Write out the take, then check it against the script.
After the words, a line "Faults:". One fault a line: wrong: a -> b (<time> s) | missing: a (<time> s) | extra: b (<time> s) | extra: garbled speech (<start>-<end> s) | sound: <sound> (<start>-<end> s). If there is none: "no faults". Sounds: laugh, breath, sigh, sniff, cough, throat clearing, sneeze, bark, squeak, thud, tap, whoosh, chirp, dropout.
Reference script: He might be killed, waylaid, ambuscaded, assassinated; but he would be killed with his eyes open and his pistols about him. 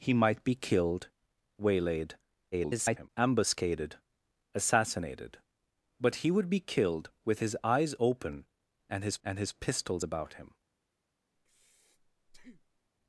He might be killed, waylaid, [garbled] ambuscaded, assassinated; but he would be killed with his eyes open and his and his pistols about him.
Faults:
extra: garbled speech (2.5-3.1 s)
extra: and his (9.2 s)
sound: breath (11.4-12.9 s)